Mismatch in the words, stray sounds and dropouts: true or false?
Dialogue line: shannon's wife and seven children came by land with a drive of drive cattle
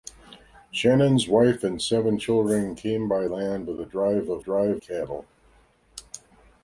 false